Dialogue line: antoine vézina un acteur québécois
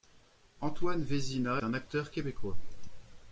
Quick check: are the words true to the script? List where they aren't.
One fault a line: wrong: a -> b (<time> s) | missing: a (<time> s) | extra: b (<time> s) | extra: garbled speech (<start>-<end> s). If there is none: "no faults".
no faults